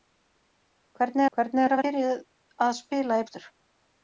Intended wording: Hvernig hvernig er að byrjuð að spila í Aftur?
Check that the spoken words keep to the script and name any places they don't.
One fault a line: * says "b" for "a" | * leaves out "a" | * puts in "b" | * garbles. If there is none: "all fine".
all fine